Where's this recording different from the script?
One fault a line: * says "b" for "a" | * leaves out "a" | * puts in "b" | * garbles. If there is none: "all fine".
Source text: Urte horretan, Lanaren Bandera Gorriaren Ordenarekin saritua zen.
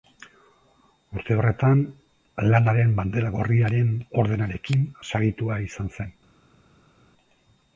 * puts in "izan"